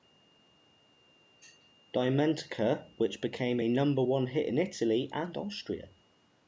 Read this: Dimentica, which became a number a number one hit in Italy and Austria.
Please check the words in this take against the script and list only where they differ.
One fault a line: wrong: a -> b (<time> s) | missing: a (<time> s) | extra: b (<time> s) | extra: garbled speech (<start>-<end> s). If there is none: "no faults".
missing: a number (4.0 s)